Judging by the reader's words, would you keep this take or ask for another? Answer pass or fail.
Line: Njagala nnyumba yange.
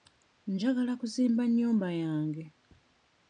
fail